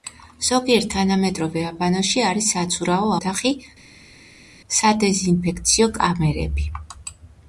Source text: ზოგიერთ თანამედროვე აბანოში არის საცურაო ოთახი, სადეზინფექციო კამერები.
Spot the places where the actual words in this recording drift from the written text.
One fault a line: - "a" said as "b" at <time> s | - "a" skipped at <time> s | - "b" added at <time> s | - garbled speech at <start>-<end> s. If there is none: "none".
none